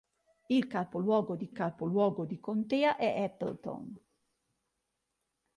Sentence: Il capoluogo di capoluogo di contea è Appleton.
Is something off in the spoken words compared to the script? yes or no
no